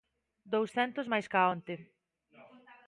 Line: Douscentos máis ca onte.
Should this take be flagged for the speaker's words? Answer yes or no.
no